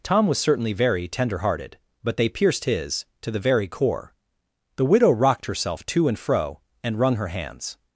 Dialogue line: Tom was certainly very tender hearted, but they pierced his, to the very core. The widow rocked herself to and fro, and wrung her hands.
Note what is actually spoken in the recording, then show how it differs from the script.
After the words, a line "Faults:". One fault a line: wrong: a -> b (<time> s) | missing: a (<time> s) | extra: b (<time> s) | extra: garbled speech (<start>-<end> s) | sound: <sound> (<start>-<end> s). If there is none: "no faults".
Tom was certainly very tender hearted, but they pierced his, to the very core. The widow rocked herself to and fro, and wrung her hands.
Faults:
no faults